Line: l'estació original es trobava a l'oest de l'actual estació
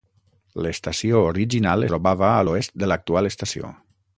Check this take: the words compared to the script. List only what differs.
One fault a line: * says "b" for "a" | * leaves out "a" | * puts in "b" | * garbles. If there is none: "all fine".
* leaves out "es"